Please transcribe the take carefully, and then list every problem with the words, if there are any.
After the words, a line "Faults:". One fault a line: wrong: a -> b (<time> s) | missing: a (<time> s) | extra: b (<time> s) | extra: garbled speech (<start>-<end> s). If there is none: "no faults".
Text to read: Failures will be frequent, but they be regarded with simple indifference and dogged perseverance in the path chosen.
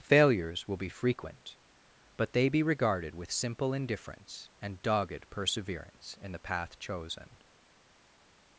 Failures will be frequent, but they be regarded with simple indifference and dogged perseverance in the path chosen.
Faults:
no faults